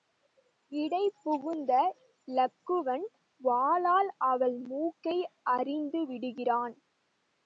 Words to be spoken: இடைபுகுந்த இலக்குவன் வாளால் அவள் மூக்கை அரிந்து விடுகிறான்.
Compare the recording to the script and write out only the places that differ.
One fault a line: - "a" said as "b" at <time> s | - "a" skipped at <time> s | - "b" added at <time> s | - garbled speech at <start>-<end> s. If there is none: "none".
none